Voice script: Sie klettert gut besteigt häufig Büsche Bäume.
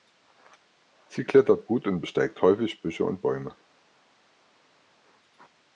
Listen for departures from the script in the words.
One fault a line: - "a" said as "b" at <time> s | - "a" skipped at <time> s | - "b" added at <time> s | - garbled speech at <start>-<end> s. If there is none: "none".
- "und" added at 1.9 s
- "und" added at 3.0 s